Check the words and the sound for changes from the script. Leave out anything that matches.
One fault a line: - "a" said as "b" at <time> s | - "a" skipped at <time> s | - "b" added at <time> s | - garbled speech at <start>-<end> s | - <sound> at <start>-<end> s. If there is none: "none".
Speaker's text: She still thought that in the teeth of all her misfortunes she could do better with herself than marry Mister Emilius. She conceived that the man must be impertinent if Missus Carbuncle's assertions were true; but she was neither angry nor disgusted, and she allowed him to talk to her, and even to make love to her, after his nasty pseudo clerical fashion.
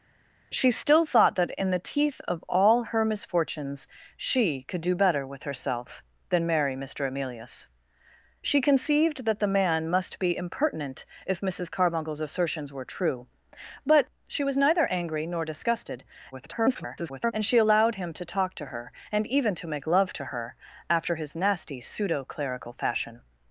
- garbled speech at 16.3-17.3 s